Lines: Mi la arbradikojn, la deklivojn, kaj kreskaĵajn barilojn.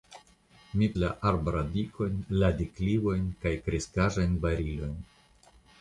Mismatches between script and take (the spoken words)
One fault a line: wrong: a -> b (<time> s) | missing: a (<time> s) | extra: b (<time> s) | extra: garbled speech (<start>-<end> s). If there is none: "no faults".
no faults